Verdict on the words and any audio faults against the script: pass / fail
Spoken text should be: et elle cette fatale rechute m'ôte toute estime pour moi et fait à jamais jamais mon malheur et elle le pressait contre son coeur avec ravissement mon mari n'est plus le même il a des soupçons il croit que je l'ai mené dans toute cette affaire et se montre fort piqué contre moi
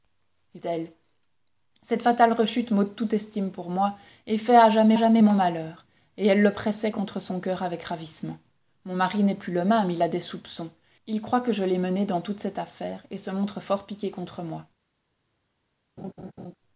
fail